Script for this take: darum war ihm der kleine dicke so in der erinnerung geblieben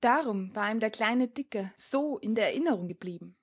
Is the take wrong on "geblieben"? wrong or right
right